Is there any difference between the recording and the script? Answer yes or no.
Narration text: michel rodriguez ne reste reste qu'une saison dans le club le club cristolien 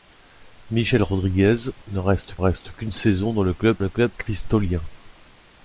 no